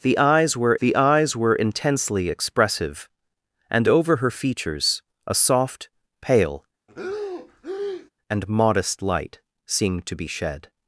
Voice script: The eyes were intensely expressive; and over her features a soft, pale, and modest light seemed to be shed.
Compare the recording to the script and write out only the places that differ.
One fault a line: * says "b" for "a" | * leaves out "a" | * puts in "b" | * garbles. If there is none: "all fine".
* puts in "the eyes were"